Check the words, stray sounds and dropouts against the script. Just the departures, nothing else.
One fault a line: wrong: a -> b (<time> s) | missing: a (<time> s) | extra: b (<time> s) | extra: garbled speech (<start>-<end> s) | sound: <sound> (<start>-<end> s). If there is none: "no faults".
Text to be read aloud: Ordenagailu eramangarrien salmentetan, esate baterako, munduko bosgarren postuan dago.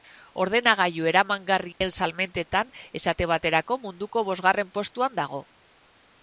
sound: dropout (1.7-1.8 s)